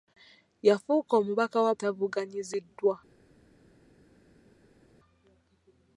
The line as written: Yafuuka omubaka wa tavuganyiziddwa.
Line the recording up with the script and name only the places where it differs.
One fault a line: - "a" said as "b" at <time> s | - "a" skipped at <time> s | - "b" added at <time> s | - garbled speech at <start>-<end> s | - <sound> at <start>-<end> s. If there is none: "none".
none